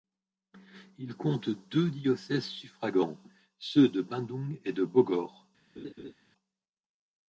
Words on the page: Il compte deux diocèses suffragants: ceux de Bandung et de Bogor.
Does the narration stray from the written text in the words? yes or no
no